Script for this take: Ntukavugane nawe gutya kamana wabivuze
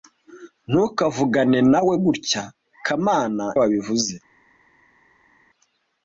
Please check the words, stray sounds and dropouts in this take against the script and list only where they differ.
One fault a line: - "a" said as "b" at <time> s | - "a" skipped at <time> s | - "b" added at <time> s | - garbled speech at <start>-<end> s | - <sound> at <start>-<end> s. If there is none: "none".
none